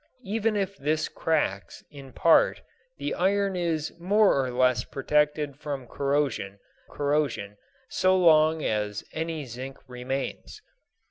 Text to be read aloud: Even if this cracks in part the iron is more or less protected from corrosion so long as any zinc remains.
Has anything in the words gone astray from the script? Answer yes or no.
yes